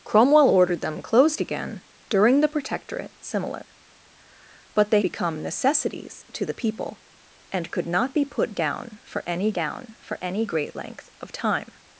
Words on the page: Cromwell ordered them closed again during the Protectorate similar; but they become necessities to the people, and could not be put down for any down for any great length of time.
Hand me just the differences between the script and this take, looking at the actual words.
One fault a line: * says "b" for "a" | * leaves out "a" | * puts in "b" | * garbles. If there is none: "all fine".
all fine